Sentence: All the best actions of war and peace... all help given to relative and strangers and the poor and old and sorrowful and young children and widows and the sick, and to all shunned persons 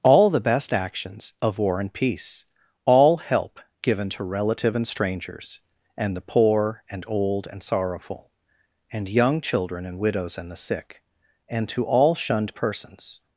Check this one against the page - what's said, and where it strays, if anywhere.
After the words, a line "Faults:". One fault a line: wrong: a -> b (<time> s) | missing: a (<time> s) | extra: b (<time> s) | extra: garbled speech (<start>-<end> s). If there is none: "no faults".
All the best actions of war and peace... all help given to relative and strangers and the poor and old and sorrowful and young children and widows and the sick, and to all shunned persons
Faults:
no faults